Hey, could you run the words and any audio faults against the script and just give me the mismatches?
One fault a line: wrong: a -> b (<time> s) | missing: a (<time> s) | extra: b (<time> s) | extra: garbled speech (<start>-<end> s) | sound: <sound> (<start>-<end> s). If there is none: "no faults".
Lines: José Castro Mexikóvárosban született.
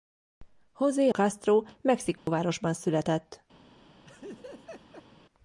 sound: dropout (2.2-2.3 s)
sound: laugh (4.0-5.1 s)